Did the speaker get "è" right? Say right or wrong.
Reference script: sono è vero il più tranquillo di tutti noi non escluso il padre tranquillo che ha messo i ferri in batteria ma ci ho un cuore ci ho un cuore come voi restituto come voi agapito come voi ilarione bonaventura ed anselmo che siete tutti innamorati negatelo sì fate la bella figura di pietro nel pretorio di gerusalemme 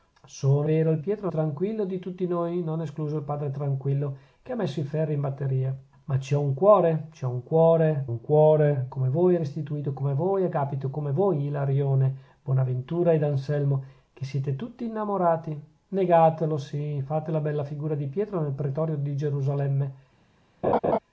wrong